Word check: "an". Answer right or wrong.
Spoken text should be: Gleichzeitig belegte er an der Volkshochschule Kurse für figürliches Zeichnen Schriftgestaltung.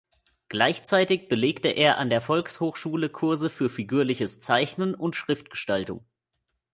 right